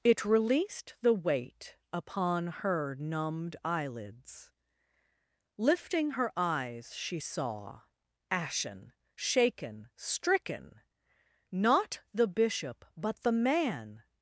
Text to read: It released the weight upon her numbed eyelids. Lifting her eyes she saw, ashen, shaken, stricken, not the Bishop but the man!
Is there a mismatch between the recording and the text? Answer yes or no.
no